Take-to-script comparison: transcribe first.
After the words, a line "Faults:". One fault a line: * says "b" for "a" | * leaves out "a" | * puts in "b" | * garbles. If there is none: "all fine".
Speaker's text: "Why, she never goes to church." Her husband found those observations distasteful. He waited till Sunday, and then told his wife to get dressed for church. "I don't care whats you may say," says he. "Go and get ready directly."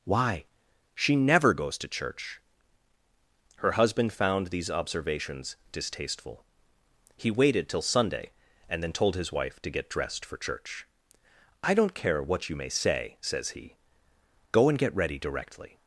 "Why, she never goes to church." Her husband found these observations distasteful. He waited till Sunday, and then told his wife to get dressed for church. "I don't care what you may say," says he. "Go and get ready directly."
Faults:
* says "these" for "those"
* says "what" for "whats"